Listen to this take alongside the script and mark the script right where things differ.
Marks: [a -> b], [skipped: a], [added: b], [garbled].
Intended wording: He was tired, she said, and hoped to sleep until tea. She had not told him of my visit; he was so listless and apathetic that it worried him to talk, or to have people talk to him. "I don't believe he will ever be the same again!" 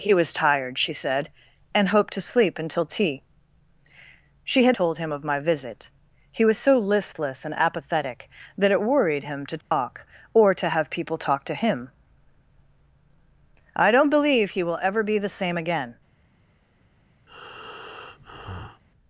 He was tired, she said, and hoped to sleep until tea. She had [skipped: not] told him of my visit; he was so listless and apathetic that it worried him to talk, or to have people talk to him. "I don't believe he will ever be the same again!"